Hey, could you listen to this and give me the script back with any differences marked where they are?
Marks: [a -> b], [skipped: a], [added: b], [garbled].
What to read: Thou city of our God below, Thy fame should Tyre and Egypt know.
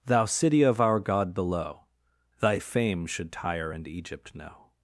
Thou city of our God below, Thy fame should Tyre and Egypt know.